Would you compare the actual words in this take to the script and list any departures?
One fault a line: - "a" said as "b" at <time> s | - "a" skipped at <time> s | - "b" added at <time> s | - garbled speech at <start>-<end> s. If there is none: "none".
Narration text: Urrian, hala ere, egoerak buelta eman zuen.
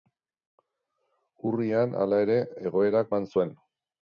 - "buelta" skipped at 3.1 s